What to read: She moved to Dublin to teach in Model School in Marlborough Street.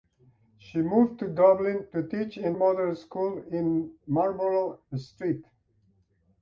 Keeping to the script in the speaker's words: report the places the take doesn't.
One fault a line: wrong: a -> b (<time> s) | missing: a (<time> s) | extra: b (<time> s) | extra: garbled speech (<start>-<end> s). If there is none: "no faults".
no faults